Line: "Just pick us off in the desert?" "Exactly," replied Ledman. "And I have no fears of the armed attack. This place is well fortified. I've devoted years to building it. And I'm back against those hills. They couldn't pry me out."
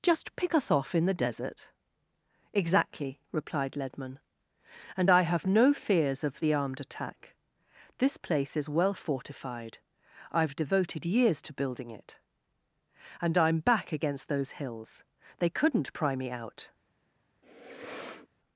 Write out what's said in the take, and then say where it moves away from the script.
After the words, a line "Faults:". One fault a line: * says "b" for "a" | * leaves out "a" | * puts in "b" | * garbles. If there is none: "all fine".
"Just pick us off in the desert?" "Exactly," replied Ledman. "And I have no fears of the armed attack. This place is well fortified. I've devoted years to building it. And I'm back against those hills. They couldn't pry me out."
Faults:
all fine